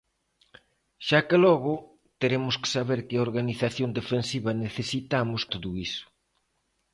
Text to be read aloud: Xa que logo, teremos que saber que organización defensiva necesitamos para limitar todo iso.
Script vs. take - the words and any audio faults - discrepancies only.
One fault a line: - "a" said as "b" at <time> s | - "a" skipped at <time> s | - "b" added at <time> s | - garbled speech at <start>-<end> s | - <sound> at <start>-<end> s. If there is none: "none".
- "para limitar" skipped at 5.4 s